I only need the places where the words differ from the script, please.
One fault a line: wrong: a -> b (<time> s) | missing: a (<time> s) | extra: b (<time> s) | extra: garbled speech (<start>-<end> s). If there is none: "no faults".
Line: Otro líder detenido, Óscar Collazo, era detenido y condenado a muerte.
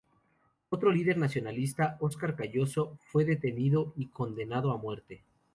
wrong: detenido -> nacionalista (1.2 s)
wrong: era -> fue (3.1 s)